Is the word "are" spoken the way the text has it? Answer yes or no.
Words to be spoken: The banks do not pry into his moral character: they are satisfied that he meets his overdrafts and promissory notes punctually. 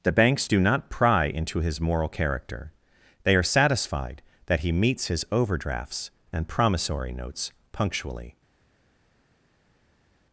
yes